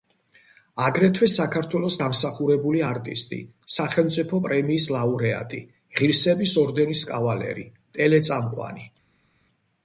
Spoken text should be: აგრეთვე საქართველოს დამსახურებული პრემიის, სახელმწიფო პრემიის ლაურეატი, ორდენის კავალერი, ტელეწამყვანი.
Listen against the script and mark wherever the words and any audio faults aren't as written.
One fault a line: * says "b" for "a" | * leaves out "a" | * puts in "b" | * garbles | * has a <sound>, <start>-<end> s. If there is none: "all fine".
* says "არტისტი" for "პრემიის"
* puts in "ღირსების"